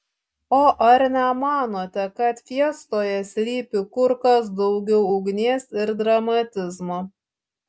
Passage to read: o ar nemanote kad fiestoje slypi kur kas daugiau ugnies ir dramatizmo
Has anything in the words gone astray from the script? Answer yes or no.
no